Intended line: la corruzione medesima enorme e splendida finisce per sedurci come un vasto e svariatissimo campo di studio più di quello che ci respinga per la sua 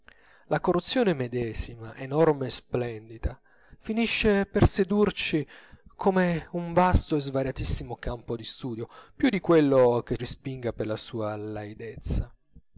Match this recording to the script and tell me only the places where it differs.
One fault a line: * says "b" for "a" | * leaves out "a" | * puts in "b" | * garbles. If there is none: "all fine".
* leaves out "ci"